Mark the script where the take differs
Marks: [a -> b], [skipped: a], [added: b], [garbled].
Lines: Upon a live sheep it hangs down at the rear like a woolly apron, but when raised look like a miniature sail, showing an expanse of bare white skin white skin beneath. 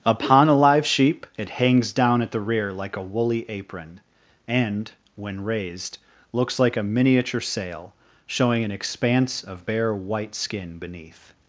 Upon a live sheep it hangs down at the rear like a woolly apron, [but -> and] when raised [look -> looks] like a miniature sail, showing an expanse of bare white skin [skipped: white skin] beneath.